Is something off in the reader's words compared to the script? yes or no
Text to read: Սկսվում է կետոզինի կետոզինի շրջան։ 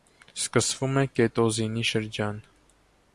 yes